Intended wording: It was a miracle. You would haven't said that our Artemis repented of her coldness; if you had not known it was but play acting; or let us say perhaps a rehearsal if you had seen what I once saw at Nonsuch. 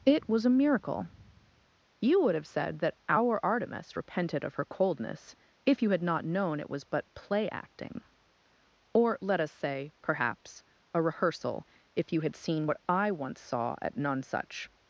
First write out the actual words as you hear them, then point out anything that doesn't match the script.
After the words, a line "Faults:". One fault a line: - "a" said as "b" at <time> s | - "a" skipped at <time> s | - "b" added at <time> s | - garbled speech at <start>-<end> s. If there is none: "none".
It was a miracle. You would have said that our Artemis repented of her coldness; if you had not known it was but play acting; or let us say perhaps a rehearsal if you had seen what I once saw at Nonsuch.
Faults:
- "haven't" said as "have" at 2.3 s